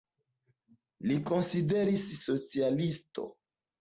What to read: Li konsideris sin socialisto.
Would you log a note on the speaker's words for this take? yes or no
yes